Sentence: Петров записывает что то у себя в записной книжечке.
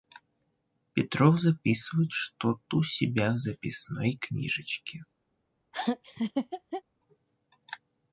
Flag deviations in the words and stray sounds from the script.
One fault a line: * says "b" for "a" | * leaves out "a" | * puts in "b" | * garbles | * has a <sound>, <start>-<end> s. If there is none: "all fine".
* has a laugh, 5.7-6.8 s